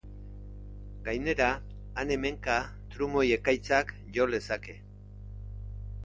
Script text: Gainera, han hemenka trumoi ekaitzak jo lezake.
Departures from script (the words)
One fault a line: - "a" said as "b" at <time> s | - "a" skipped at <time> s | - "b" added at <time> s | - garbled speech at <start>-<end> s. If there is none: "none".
none